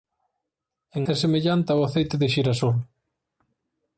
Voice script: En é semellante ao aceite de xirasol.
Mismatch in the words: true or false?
false